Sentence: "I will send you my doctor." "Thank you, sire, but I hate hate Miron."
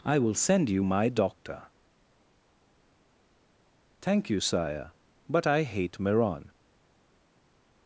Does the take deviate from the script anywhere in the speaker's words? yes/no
yes